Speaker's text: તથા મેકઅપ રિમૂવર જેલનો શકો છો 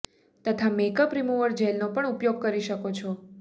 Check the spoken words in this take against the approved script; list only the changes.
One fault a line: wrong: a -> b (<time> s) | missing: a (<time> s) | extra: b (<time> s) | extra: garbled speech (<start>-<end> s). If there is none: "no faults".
extra: પણ ઉપયોગ કરી (1.9 s)